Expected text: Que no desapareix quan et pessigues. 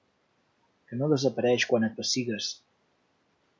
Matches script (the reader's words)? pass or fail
pass